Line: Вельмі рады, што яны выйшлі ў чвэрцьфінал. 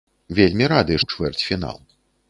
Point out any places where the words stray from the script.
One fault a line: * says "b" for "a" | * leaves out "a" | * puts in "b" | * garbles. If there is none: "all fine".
* leaves out "што яны выйшлі"